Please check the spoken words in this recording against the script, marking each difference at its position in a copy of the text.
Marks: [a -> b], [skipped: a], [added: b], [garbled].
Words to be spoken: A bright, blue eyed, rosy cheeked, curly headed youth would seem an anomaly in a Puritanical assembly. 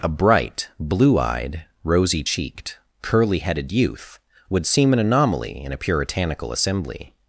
A bright, blue eyed, rosy cheeked, curly headed youth would seem an anomaly in a Puritanical assembly.